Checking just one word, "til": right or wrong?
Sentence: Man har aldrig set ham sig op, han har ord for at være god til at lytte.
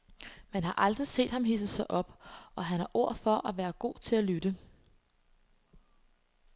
right